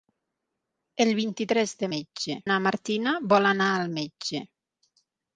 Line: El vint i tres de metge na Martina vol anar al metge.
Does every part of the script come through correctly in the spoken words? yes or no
yes